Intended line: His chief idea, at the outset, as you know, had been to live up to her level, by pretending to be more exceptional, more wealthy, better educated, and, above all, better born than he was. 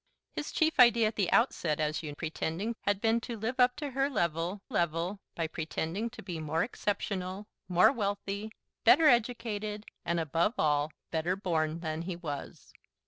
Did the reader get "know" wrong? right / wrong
wrong